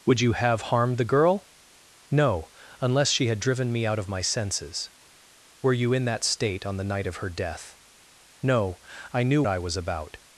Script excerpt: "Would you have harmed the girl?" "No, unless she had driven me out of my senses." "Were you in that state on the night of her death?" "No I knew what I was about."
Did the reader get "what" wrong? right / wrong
wrong